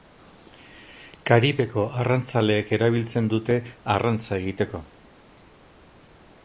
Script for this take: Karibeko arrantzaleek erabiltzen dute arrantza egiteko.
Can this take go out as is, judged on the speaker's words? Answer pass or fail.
pass